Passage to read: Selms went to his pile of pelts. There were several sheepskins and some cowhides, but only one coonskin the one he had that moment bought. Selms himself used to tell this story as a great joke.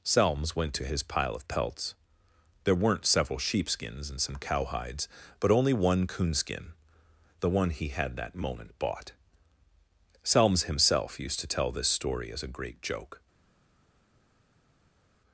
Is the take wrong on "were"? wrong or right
wrong